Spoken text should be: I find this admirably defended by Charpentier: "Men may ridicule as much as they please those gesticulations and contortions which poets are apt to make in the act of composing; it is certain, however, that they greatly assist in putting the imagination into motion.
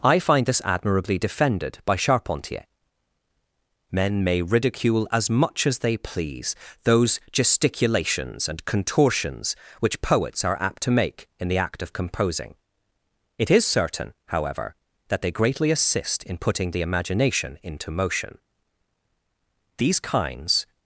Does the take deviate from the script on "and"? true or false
false